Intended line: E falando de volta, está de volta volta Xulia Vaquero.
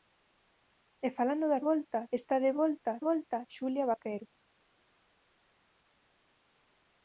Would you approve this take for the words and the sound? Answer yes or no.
yes